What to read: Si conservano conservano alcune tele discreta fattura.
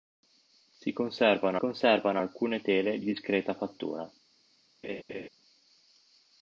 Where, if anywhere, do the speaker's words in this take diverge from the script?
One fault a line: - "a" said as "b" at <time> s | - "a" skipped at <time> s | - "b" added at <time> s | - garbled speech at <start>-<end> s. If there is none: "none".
none